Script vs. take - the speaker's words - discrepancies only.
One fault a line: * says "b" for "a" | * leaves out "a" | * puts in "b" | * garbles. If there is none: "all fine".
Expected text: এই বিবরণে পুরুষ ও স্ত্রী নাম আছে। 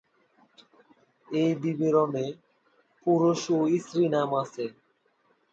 all fine